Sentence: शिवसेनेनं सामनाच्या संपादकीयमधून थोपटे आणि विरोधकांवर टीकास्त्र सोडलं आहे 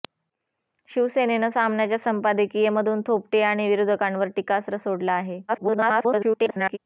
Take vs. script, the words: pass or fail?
fail